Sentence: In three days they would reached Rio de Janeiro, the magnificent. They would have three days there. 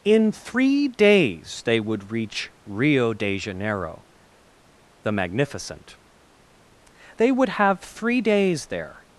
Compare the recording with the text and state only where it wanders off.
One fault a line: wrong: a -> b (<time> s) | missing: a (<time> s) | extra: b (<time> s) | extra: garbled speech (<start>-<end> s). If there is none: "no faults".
wrong: reached -> reach (2.1 s)